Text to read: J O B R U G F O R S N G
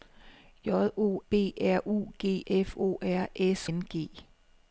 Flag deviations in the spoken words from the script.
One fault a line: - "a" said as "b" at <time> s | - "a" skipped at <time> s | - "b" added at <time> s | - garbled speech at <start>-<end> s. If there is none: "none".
none